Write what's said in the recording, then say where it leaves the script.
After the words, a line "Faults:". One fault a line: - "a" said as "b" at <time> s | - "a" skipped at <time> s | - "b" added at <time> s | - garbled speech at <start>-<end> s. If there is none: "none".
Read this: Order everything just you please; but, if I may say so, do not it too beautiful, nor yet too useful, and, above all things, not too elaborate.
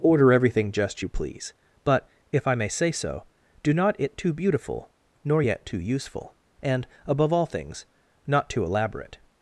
Order everything just you please; but, if I may say so, do not it too beautiful, nor yet too useful, and, above all things, not too elaborate.
Faults:
none